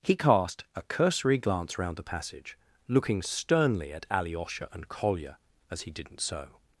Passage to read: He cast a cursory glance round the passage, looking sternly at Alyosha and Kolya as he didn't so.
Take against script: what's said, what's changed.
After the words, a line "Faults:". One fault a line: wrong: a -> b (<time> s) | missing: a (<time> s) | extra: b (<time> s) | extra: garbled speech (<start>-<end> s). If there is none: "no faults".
He cast a cursory glance round the passage, looking sternly at Alyosha and Kolya as he didn't so.
Faults:
no faults